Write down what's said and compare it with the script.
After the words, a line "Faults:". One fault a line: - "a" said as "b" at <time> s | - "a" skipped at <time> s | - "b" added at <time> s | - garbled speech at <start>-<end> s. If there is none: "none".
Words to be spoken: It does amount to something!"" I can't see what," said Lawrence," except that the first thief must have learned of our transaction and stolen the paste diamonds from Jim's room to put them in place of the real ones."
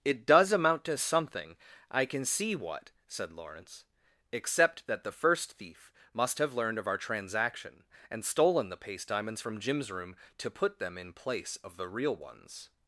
It does amount to something!"" I can see what," said Lawrence," except that the first thief must have learned of our transaction and stolen the paste diamonds from Jim's room to put them in place of the real ones."
Faults:
- "can't" said as "can" at 2.0 s